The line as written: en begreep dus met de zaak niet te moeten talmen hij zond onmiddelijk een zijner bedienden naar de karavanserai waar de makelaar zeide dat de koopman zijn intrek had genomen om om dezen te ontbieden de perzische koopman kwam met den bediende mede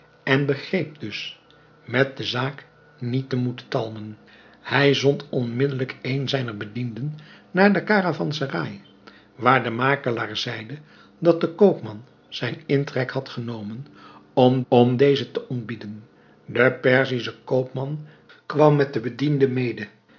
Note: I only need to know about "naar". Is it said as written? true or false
true